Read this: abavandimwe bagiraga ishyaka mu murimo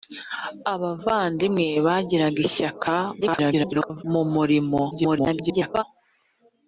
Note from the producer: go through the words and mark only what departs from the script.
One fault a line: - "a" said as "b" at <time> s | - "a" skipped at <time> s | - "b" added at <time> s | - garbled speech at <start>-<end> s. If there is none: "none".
- garbled speech at 3.2-4.0 s
- garbled speech at 4.9-5.8 s